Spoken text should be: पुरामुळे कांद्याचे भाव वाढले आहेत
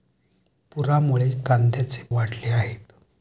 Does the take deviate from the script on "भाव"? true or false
true